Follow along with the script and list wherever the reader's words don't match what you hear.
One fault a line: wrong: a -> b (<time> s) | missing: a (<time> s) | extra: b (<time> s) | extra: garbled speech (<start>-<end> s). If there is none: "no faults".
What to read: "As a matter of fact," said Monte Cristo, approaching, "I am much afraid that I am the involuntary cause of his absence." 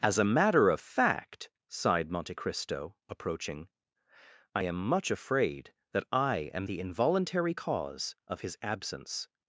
wrong: said -> sighed (1.7 s)